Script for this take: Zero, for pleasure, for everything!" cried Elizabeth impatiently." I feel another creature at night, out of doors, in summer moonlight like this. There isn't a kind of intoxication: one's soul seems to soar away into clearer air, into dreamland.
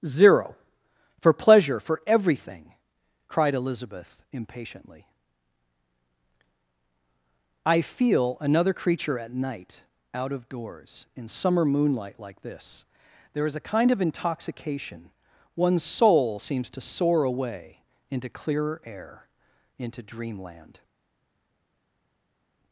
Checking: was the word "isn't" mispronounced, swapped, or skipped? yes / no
yes